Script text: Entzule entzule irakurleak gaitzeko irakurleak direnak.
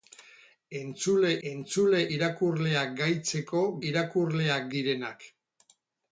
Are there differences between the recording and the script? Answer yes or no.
no